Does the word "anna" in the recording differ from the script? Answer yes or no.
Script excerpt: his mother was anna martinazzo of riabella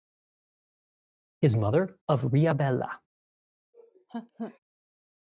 yes